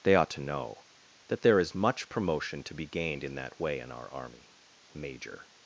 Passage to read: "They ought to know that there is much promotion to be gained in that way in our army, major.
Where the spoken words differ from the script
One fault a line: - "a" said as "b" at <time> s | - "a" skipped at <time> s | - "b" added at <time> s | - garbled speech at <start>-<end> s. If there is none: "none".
none